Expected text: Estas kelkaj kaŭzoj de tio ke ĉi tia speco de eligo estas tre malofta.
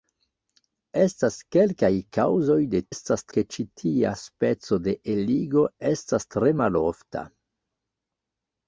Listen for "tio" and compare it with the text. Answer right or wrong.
wrong